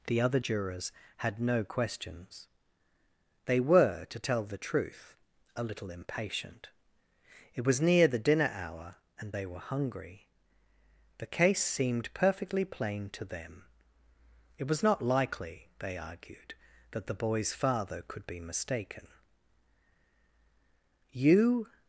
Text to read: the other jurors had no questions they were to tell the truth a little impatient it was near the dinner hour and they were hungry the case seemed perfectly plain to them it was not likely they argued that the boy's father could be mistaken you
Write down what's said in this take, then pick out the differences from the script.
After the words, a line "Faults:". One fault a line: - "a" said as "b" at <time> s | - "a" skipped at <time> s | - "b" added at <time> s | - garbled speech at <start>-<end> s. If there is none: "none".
the other jurors had no questions they were to tell the truth a little impatient it was near the dinner hour and they were hungry the case seemed perfectly plain to them it was not likely they argued that the boy's father could be mistaken you
Faults:
none